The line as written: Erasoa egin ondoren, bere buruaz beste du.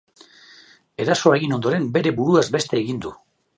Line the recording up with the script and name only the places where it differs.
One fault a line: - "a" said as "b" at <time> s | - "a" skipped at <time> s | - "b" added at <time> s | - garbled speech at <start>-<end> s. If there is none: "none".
- "egin" added at 2.8 s